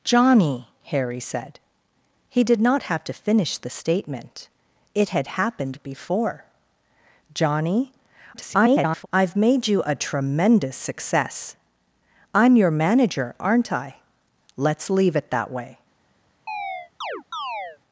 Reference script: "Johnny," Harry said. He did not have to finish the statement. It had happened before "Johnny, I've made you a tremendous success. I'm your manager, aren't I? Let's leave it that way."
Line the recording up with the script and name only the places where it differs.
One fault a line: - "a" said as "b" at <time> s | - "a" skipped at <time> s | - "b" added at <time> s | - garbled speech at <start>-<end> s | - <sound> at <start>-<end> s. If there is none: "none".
- garbled speech at 8.3-9.1 s
- chirp at 16.5-17.8 s